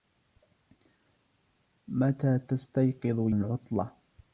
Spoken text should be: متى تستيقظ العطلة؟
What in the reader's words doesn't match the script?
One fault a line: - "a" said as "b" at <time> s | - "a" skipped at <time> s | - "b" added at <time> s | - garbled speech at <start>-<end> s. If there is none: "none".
none